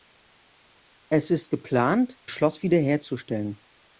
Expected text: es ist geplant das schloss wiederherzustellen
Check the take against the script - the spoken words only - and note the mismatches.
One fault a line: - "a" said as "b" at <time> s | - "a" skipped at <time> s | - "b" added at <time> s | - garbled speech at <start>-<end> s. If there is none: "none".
- "das" skipped at 2.2 s